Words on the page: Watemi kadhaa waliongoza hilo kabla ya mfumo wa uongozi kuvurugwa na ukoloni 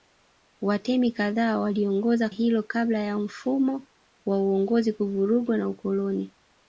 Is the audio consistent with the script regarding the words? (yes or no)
yes